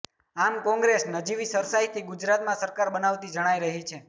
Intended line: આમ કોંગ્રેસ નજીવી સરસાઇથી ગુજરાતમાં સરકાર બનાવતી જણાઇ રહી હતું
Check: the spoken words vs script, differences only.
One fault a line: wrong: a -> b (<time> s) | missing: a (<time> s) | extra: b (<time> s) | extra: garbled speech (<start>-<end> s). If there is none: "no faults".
wrong: હતું -> છે (3.9 s)